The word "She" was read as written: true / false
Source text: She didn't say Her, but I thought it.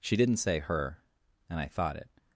true